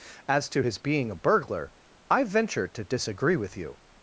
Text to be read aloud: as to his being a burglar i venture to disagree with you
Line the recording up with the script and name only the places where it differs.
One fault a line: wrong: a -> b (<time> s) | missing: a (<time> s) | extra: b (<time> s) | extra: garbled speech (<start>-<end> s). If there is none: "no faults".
no faults